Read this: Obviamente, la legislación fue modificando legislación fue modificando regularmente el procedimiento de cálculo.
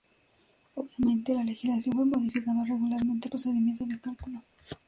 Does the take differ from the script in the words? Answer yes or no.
yes